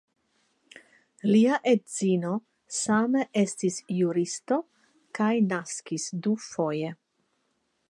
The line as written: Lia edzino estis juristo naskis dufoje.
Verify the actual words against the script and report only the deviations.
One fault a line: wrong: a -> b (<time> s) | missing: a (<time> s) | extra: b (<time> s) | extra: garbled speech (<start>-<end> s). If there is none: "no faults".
extra: same (2.8 s)
extra: kaj (5.2 s)